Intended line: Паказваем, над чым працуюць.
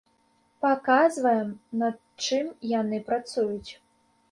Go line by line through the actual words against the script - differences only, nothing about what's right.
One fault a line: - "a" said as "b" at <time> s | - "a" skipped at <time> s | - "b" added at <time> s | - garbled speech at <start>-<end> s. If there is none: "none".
- "яны" added at 2.8 s